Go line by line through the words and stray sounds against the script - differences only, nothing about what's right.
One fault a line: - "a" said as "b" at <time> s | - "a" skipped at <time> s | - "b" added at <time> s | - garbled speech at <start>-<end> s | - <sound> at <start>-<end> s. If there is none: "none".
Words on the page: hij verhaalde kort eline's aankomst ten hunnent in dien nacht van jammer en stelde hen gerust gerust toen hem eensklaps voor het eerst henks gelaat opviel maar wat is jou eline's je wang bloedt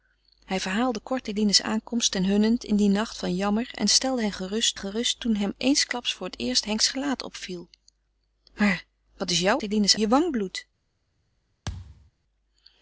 - thud at 11.7-12.1 s